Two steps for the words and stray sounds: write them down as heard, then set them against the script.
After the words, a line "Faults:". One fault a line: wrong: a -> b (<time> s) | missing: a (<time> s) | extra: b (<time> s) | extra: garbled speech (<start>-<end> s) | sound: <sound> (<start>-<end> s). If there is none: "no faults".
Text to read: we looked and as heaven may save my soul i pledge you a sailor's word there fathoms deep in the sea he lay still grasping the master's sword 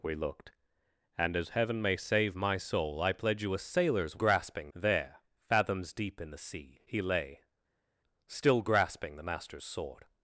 we looked and as heaven may save my soul i pledge you a sailor's grasping there fathoms deep in the sea he lay still grasping the master's sword
Faults:
wrong: word -> grasping (4.1 s)